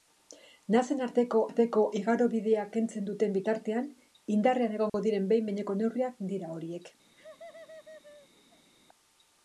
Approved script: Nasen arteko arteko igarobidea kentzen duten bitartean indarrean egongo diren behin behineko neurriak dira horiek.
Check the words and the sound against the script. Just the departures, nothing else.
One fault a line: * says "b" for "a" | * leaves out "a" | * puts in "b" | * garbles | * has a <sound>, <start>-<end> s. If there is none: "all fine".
* has a dropout, 4.9-4.9 s
* has a laugh, 7.1-8.7 s